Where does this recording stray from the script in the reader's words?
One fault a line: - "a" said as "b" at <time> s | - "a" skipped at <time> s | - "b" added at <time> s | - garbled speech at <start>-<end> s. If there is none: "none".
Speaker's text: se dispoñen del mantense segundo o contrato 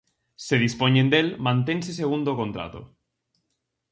none